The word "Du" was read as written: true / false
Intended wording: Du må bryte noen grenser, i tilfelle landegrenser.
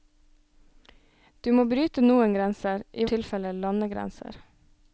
true